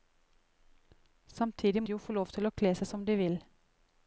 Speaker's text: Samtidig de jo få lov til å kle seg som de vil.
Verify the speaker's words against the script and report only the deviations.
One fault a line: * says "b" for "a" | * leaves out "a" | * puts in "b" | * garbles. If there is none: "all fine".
all fine